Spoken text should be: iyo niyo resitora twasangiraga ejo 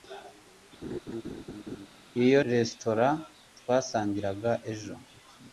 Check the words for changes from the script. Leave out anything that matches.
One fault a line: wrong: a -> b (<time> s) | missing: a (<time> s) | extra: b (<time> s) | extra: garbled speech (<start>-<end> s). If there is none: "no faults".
missing: niyo (2.4 s)